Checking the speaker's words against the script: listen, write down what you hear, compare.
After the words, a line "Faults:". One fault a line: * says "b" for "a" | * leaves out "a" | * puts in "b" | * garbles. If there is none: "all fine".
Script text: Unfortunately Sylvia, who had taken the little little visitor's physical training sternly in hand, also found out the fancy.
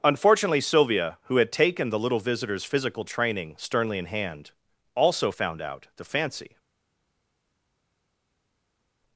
Unfortunately Sylvia, who had taken the little visitor's physical training sternly in hand, also found out the fancy.
Faults:
* leaves out "little"